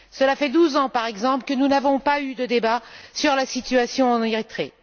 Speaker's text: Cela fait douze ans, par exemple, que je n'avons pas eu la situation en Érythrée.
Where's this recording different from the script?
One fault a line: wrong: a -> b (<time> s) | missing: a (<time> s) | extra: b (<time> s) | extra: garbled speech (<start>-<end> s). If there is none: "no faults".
wrong: je -> nous (1.5 s)
extra: de débat sur (2.4 s)